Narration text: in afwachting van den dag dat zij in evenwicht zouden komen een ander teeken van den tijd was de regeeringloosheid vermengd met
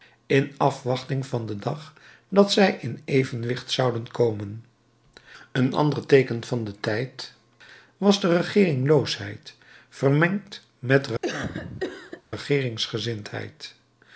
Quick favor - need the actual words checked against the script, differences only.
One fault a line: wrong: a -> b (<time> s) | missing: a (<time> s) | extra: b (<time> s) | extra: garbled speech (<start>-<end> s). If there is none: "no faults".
no faults